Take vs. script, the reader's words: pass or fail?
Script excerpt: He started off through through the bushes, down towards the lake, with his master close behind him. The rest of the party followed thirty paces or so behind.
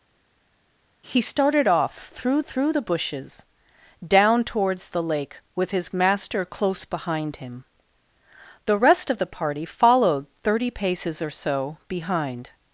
pass